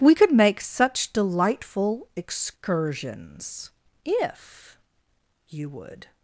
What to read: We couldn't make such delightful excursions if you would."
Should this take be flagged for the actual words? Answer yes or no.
yes